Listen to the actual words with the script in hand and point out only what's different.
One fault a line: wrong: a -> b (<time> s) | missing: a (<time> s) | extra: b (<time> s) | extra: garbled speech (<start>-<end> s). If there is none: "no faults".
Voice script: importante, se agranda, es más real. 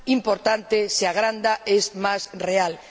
no faults